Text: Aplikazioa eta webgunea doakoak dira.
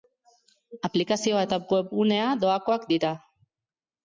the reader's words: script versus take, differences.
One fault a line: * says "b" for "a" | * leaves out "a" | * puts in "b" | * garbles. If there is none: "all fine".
all fine